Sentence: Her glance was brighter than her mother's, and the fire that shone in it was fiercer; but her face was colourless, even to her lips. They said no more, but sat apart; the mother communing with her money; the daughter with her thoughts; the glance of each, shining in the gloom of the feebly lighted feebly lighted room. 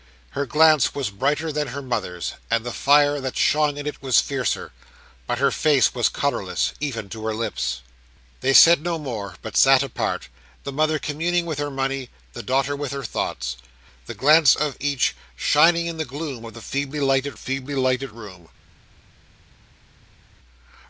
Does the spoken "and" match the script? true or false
true